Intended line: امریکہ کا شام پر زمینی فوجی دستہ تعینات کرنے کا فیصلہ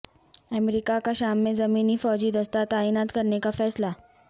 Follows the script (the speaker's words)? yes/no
no